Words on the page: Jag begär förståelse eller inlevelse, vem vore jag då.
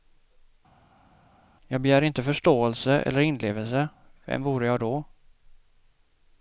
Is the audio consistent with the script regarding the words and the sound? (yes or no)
no